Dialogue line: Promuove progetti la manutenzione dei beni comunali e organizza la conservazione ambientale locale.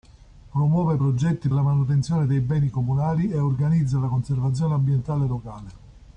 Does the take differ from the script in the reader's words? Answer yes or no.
no